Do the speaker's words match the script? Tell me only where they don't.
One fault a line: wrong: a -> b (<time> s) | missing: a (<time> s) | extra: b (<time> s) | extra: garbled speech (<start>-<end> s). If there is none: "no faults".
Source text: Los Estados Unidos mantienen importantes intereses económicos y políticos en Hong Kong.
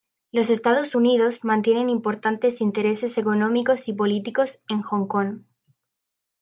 no faults